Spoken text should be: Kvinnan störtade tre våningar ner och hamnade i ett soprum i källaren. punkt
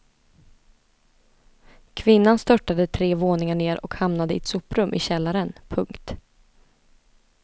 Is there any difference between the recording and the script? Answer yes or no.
no